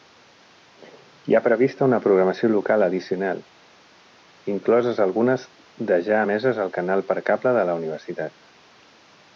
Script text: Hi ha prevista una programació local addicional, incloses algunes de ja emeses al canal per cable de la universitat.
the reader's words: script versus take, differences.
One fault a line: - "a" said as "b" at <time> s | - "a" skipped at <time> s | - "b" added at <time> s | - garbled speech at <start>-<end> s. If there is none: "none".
none